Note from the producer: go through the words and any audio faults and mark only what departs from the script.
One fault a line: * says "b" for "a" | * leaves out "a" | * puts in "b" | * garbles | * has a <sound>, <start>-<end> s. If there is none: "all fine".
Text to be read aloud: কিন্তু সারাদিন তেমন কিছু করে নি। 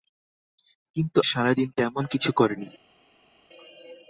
all fine